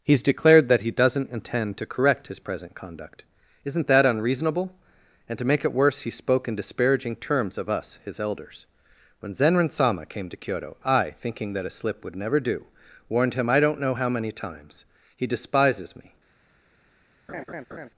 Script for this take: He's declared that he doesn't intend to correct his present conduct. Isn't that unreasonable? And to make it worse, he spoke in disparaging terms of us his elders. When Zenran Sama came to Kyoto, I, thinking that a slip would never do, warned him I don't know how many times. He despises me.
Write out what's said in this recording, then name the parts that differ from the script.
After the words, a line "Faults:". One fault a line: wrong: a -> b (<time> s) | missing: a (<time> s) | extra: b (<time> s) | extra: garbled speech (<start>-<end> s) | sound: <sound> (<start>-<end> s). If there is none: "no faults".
He's declared that he doesn't intend to correct his present conduct. Isn't that unreasonable? And to make it worse, he spoke in disparaging terms of us his elders. When Zenran Sama came to Kyoto, I, thinking that a slip would never do, warned him I don't know how many times. He despises me.
Faults:
sound: laugh (17.3-17.9 s)